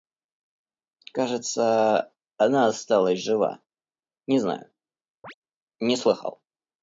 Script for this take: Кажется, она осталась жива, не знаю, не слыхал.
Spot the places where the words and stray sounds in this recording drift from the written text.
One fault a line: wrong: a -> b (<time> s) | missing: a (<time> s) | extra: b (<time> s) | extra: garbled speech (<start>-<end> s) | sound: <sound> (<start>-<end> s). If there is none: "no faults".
sound: chirp (5.2-5.3 s)